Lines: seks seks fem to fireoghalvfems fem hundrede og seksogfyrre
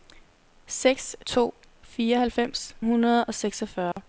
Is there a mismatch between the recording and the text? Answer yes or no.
yes